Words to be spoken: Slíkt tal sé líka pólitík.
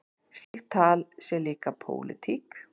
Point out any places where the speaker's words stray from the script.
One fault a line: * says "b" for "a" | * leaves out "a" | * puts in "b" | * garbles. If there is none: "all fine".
all fine